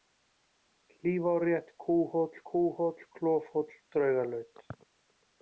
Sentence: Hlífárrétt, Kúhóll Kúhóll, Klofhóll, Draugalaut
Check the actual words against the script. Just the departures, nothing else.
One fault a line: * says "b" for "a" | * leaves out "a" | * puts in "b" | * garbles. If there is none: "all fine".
all fine